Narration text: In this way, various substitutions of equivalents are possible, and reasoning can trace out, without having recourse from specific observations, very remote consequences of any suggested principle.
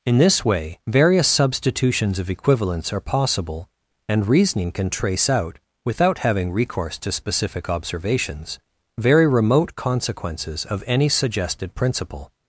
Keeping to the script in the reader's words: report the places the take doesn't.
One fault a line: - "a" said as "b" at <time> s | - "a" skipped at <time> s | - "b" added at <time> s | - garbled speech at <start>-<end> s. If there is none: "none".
- "from" said as "to" at 7.0 s